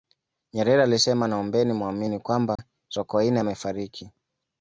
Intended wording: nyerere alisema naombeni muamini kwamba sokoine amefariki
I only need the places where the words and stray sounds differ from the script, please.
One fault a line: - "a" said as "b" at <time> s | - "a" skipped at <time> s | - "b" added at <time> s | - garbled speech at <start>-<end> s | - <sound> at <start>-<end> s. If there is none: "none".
- dropout at 2.6-2.6 s